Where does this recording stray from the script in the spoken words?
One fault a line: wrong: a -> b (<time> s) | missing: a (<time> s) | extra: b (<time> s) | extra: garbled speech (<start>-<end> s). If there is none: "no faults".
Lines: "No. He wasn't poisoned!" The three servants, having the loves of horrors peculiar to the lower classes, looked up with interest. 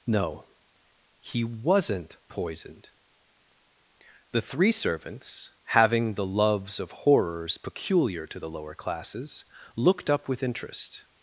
no faults